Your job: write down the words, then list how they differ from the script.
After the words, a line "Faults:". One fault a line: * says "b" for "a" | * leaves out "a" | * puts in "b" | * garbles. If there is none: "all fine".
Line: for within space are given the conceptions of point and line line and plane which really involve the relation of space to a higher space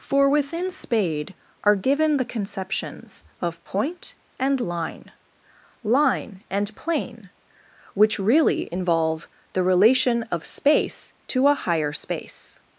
for within spade are given the conceptions of point and line line and plane which really involve the relation of space to a higher space
Faults:
* says "spade" for "space"